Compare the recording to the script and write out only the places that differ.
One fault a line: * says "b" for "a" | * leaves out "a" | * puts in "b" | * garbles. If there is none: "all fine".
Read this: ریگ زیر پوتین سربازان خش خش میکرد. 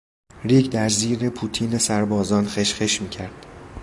* puts in "در"